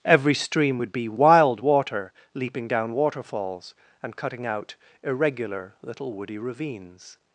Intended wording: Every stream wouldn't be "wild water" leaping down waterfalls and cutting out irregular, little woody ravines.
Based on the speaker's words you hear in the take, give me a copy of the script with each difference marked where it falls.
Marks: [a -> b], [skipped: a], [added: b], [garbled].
Every stream [wouldn't -> would] be "wild water" leaping down waterfalls and cutting out irregular, little woody ravines.